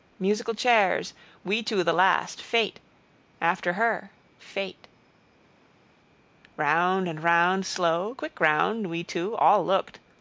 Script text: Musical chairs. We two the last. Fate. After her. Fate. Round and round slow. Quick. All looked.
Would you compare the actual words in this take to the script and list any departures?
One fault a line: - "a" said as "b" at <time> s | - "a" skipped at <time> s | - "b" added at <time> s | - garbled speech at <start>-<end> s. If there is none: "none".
- "round We two" added at 8.4 s